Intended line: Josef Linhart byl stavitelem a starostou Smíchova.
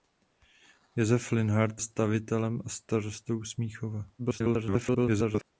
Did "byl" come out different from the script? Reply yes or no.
yes